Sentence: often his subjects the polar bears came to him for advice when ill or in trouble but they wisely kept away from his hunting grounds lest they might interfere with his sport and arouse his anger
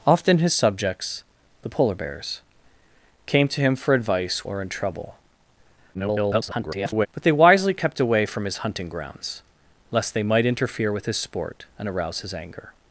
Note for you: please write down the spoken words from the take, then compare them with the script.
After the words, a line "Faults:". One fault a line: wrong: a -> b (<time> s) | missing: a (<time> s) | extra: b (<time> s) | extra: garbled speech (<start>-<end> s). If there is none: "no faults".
often his subjects the polar bears came to him for advice or in trouble [garbled] but they wisely kept away from his hunting grounds lest they might interfere with his sport and arouse his anger
Faults:
missing: when ill (4.4 s)
extra: garbled speech (5.9-7.1 s)